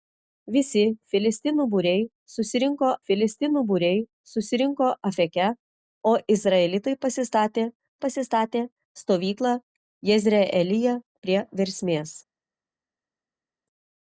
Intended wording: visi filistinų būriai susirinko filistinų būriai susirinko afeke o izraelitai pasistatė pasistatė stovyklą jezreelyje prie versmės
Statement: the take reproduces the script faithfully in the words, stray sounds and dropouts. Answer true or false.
true